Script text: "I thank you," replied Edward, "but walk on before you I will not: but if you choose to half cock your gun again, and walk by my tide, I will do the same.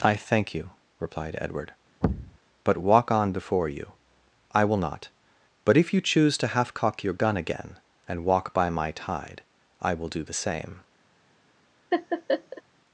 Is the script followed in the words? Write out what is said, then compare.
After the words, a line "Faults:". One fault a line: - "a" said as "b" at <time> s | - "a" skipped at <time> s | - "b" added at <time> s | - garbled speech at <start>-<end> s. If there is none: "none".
"I thank you," replied Edward, "but walk on before you I will not: but if you choose to half cock your gun again, and walk by my tide, I will do the same.
Faults:
none